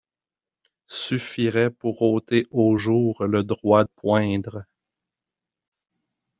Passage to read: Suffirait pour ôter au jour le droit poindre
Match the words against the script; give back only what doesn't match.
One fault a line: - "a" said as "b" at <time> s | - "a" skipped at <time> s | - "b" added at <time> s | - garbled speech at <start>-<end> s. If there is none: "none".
none